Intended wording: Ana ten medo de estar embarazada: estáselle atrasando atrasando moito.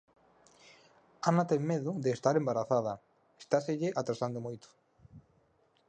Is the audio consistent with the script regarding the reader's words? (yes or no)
no